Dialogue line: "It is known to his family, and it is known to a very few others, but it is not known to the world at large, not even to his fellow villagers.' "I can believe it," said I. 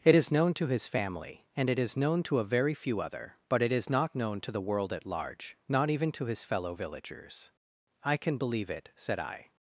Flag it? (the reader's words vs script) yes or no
yes